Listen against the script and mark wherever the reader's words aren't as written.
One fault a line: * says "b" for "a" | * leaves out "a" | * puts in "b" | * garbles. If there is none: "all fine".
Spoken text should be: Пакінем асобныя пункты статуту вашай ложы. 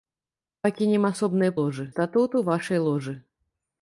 * says "ложы" for "пункты"